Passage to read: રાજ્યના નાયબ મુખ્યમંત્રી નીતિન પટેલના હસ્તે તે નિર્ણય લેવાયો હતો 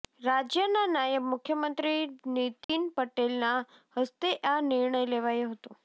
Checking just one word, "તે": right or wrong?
wrong